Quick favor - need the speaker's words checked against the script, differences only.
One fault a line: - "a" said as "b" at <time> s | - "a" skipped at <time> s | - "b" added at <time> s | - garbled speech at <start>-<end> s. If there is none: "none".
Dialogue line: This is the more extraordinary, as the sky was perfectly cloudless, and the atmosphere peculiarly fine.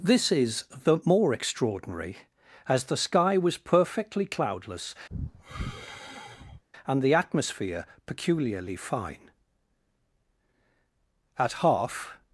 - "At half" added at 11.4 s